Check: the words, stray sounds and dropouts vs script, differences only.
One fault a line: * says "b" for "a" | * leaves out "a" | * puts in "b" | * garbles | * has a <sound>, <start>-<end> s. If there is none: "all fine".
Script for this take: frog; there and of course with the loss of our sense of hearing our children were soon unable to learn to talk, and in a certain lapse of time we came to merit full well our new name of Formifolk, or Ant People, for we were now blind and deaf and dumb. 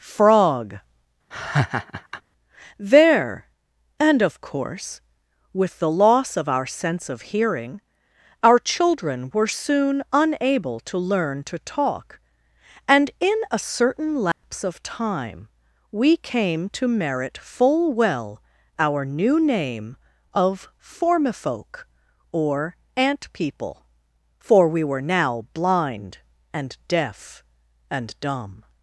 * has a laugh, 1.3-2.2 s
* has a dropout, 14.3-14.4 s